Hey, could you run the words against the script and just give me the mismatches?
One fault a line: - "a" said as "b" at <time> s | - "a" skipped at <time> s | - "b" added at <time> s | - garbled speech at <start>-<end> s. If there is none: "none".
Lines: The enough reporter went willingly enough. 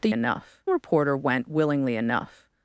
none